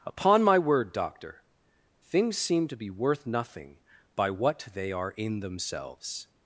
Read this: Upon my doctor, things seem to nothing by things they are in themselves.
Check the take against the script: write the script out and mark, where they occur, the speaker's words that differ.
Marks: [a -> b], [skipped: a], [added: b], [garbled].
Upon my [added: word] doctor, things seem to [added: be worth] nothing by [things -> what] they are in themselves.